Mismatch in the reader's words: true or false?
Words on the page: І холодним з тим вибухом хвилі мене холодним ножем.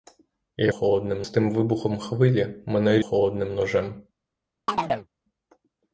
false